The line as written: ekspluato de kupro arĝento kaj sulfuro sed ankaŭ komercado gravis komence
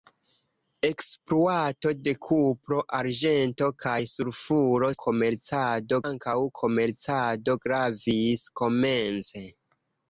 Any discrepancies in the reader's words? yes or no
yes